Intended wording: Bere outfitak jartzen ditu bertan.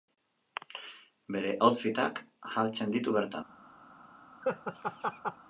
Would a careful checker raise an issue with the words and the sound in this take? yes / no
yes